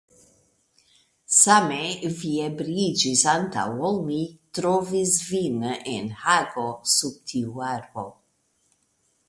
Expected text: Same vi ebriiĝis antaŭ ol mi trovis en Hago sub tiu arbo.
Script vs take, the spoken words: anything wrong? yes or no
yes